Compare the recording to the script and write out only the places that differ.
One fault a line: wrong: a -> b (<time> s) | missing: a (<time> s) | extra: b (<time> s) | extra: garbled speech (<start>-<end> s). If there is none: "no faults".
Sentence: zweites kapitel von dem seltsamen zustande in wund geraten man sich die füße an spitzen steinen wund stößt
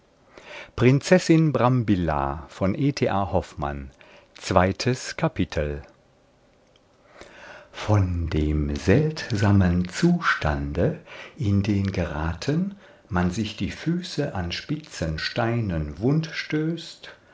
wrong: wund -> den (11.6 s)